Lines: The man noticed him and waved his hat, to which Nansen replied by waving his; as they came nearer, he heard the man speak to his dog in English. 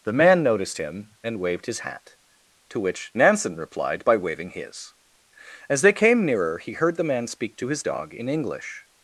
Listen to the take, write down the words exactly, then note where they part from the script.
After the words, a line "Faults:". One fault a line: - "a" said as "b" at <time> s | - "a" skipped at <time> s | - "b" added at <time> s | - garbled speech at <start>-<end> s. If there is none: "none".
The man noticed him and waved his hat, to which Nansen replied by waving his; as they came nearer, he heard the man speak to his dog in English.
Faults:
none